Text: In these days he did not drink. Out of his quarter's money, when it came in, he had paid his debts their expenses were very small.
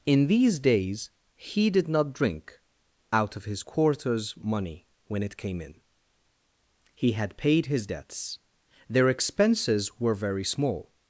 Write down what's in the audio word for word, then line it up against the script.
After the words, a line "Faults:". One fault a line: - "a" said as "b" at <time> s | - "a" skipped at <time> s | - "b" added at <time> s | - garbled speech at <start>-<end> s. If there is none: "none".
In these days he did not drink. Out of his quarter's money, when it came in, he had paid his debts their expenses were very small.
Faults:
none